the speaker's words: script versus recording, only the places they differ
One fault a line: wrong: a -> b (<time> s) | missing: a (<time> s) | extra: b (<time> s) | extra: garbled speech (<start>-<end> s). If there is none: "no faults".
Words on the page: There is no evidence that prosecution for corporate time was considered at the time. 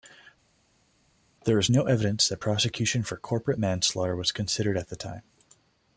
wrong: time -> manslaughter (3.6 s)